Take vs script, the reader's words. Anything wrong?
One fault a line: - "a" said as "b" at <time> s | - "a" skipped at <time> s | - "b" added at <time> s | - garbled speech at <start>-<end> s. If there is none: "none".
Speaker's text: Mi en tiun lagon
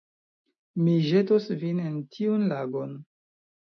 - "ĵetos vin" added at 1.1 s